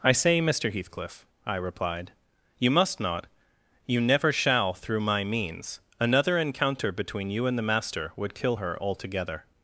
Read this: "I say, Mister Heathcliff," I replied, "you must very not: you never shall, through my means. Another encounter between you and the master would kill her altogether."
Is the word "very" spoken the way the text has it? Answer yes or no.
no